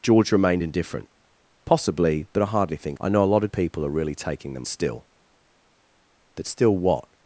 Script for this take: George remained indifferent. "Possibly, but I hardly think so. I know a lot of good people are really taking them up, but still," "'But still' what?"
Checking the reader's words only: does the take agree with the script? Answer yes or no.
no